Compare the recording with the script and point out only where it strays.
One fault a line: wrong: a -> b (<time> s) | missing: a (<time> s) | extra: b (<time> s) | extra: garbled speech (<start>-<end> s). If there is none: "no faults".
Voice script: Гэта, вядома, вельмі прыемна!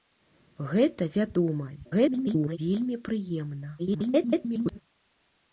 extra: garbled speech (1.8-2.6 s)
extra: garbled speech (3.8-4.8 s)